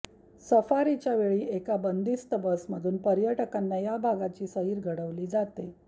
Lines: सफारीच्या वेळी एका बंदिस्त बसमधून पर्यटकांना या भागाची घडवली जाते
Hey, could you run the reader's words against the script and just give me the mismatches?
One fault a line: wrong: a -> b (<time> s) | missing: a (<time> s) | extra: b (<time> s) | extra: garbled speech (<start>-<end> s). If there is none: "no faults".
extra: सैर (4.4 s)